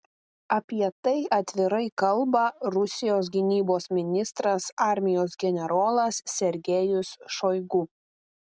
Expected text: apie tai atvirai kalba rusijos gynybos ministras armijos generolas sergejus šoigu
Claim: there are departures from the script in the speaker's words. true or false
false